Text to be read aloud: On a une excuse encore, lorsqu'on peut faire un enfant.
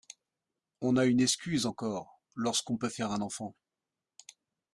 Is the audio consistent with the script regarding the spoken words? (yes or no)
yes